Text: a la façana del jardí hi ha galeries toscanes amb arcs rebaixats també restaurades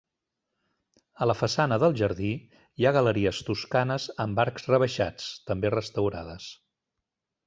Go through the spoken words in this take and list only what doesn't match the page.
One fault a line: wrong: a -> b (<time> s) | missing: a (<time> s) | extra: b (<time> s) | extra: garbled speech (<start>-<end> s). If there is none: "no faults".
no faults